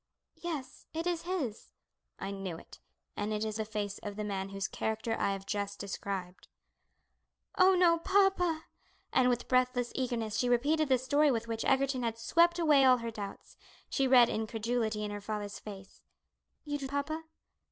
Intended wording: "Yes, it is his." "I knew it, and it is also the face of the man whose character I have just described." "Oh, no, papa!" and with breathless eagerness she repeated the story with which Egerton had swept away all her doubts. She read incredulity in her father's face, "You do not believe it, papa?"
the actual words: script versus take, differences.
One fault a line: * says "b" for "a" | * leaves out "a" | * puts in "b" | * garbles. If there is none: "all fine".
* leaves out "also"
* leaves out "not believe it"